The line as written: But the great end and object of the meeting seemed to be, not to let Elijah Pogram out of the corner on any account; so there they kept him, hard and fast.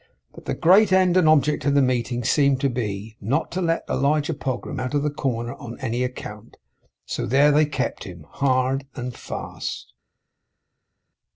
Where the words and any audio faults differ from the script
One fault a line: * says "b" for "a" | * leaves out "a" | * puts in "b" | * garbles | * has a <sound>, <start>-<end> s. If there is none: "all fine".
all fine